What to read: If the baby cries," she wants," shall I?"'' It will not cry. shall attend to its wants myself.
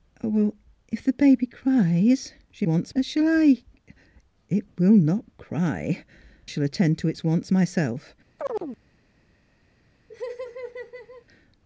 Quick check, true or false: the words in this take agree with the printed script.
true